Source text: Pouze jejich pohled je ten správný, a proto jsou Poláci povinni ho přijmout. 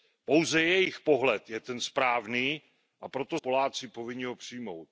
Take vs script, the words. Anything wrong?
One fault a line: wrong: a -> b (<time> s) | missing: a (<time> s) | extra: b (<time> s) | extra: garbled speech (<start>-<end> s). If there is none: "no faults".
missing: jsou (3.4 s)